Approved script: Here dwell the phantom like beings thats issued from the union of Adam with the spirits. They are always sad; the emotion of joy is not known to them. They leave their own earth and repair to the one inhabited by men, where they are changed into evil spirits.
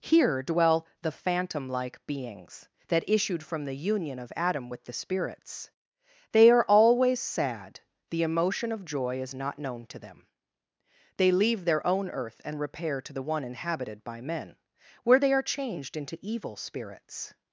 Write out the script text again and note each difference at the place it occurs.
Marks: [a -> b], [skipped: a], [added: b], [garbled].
Here dwell the phantom like beings [thats -> that] issued from the union of Adam with the spirits. They are always sad; the emotion of joy is not known to them. They leave their own earth and repair to the one inhabited by men, where they are changed into evil spirits.